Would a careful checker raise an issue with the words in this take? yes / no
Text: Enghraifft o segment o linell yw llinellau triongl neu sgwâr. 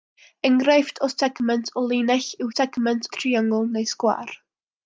yes